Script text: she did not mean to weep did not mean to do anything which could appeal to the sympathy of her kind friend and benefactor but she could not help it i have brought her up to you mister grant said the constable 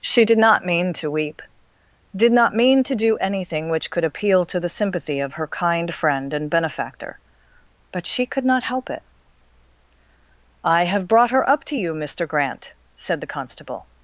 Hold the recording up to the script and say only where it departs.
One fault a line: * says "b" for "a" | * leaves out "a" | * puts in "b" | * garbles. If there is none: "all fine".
all fine